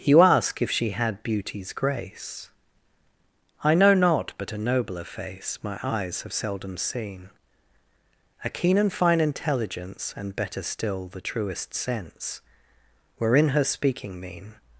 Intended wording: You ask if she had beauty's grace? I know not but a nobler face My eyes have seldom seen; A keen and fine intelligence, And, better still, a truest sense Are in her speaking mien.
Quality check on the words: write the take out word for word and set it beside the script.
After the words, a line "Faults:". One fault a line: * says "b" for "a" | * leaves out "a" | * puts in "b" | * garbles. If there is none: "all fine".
You ask if she had beauty's grace? I know not but a nobler face My eyes have seldom seen; A keen and fine intelligence, And, better still, the truest sense Were in her speaking mien.
Faults:
* says "the" for "a"
* says "Were" for "Are"